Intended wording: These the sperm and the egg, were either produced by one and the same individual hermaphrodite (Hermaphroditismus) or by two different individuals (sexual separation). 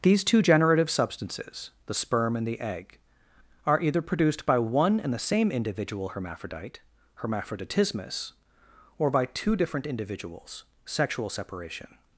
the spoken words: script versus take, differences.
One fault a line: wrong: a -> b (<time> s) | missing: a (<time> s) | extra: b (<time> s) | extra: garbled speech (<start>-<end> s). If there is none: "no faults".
extra: two generative substances (0.2 s)
wrong: were -> are (3.7 s)